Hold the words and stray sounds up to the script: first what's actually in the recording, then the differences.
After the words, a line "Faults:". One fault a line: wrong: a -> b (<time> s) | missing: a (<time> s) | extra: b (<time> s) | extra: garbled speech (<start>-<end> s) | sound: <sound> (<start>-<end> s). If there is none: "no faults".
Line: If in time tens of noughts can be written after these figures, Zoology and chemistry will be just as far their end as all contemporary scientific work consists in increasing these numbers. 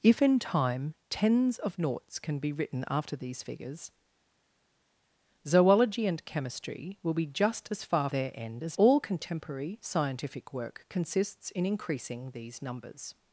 If in time tens of noughts can be written after these figures, Zoology and chemistry will be just as far their end as all contemporary scientific work consists in increasing these numbers.
Faults:
no faults